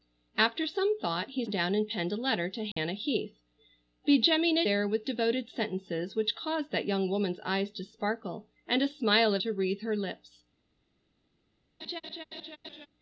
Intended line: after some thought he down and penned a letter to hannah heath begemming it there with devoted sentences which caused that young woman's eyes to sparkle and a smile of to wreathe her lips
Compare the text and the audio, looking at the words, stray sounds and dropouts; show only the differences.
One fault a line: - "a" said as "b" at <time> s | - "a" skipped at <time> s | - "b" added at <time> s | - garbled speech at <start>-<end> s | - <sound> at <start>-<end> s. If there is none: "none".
- dropout at 2.7-2.8 s
- laugh at 11.8-12.9 s